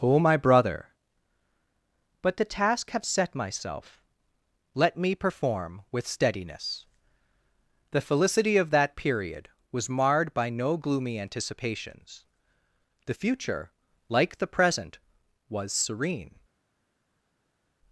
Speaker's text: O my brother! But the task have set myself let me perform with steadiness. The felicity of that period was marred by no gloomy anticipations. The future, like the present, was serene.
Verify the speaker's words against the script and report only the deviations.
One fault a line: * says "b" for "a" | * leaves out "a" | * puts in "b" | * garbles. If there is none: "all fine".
all fine